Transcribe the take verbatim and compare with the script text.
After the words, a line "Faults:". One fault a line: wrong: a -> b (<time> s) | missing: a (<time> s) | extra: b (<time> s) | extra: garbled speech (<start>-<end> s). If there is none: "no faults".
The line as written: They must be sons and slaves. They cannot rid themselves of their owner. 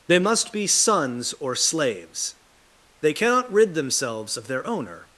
They must be sons or slaves. They cannot rid themselves of their owner.
Faults:
wrong: and -> or (1.4 s)